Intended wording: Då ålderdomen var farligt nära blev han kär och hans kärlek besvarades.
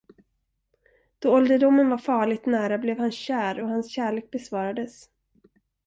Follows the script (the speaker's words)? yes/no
yes